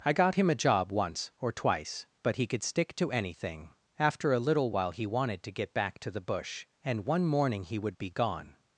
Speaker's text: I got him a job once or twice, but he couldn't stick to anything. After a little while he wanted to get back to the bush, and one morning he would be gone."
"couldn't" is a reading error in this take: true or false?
true